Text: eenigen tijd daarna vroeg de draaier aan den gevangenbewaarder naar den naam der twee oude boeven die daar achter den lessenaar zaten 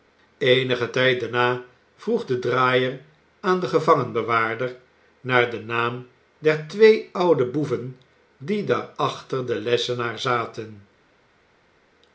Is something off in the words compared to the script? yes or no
no